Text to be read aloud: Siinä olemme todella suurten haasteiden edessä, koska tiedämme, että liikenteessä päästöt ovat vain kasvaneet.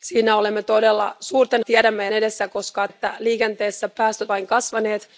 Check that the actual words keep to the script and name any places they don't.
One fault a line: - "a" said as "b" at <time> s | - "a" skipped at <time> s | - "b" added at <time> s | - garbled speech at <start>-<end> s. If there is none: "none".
- "haasteiden" said as "tiedämme" at 1.6 s
- "tiedämme" skipped at 2.9 s
- "ovat" skipped at 4.3 s